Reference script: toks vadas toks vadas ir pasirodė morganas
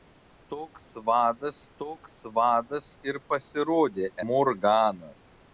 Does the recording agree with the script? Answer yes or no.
yes